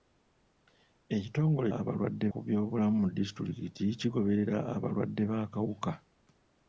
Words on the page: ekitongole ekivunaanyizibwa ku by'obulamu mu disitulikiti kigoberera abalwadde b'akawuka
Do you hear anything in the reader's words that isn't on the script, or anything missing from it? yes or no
yes